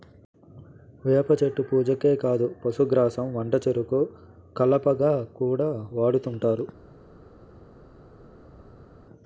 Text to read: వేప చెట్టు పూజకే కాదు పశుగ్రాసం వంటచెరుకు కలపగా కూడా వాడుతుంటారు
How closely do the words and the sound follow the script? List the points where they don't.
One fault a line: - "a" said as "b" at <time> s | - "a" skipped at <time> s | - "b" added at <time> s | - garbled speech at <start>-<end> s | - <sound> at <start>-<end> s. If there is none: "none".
none